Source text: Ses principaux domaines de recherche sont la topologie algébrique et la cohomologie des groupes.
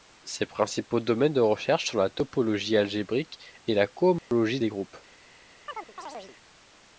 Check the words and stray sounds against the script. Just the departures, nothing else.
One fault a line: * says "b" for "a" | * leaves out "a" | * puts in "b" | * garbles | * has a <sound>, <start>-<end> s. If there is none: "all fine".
* has a dropout, 4.2-4.3 s
* has a chirp, 5.7-6.4 s